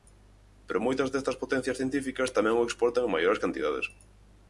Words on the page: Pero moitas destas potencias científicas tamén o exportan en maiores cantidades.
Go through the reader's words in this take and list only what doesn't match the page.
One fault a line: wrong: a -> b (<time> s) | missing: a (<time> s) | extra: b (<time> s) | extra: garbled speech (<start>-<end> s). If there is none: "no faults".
no faults